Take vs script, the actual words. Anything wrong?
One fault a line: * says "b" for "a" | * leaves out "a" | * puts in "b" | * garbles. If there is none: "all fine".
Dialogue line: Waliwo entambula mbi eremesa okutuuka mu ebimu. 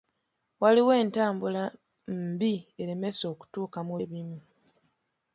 all fine